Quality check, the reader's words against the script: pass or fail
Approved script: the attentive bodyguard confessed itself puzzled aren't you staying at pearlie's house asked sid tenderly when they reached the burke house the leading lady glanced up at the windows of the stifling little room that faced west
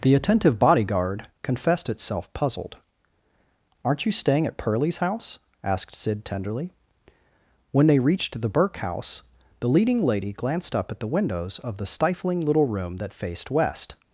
pass